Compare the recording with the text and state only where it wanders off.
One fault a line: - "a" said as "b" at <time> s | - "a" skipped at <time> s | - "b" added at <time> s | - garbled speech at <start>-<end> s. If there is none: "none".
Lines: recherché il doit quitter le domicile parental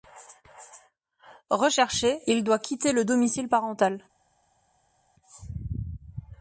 none